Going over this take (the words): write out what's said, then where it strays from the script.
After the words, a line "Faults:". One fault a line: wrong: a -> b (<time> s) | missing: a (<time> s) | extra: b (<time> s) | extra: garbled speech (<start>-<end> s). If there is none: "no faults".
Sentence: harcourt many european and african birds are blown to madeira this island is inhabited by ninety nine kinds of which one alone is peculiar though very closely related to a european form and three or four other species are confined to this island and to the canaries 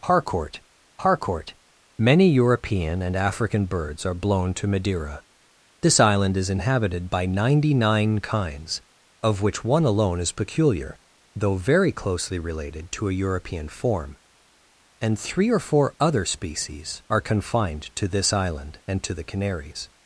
harcourt harcourt many european and african birds are blown to madeira this island is inhabited by ninety nine kinds of which one alone is peculiar though very closely related to a european form and three or four other species are confined to this island and to the canaries
Faults:
extra: harcourt (1.0 s)